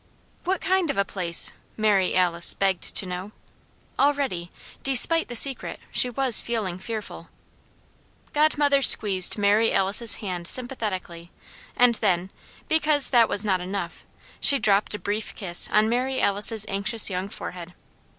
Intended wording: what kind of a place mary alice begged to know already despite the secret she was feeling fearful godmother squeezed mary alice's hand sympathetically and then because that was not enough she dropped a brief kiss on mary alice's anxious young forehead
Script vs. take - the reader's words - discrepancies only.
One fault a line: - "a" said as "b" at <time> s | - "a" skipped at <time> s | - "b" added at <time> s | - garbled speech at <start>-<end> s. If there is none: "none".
none